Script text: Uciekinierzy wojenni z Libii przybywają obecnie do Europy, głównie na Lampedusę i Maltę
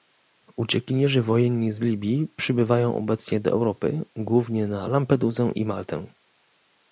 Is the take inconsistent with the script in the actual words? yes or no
no